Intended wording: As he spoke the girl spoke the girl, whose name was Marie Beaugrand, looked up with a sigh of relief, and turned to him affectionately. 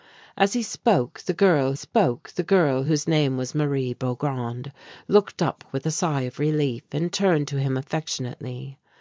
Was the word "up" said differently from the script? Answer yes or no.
no